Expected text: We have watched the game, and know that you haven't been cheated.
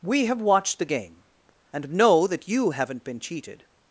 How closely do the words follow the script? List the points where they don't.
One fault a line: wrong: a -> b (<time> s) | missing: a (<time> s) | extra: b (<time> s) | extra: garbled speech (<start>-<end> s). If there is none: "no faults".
no faults